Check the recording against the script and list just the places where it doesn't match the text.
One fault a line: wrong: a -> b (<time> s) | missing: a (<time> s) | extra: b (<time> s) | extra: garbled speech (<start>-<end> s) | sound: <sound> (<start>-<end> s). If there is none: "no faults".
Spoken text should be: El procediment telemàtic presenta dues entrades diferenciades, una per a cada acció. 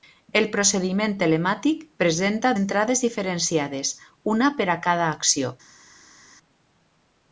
missing: dues (2.5 s)